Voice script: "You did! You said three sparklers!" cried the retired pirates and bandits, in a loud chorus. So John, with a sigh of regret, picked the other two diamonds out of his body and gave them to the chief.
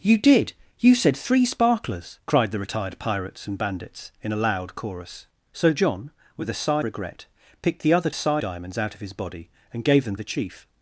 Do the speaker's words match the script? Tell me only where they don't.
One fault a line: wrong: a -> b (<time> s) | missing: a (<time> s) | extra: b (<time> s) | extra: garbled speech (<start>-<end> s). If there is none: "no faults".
missing: of (6.8 s)
wrong: two -> sigh (8.1 s)
missing: to (10.2 s)